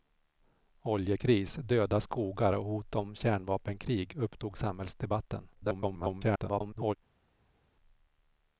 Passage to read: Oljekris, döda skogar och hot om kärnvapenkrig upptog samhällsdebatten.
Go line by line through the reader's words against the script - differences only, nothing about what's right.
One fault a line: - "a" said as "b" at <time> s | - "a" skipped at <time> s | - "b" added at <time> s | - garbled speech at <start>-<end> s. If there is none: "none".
- garbled speech at 5.5-7.0 s